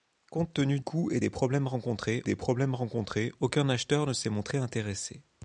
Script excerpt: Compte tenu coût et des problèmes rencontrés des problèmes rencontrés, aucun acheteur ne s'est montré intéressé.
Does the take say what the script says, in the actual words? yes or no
yes